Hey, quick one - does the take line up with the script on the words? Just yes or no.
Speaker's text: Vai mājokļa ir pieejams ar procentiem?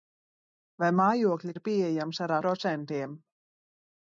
yes